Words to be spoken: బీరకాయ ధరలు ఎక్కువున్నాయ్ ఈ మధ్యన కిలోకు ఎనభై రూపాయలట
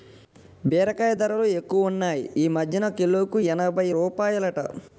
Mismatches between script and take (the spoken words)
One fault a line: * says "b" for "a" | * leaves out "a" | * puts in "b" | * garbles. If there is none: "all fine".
all fine